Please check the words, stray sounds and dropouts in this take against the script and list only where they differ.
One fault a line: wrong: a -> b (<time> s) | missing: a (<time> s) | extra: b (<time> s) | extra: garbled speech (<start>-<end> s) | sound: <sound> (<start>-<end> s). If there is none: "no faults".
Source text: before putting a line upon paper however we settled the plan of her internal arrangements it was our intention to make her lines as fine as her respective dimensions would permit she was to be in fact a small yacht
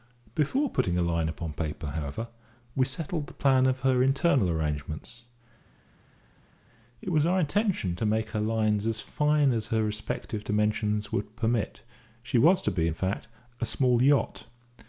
no faults